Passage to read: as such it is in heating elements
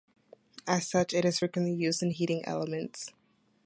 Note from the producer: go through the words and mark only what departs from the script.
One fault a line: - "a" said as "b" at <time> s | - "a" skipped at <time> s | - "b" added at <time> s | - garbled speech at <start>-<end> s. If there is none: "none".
- "frequently used" added at 1.4 s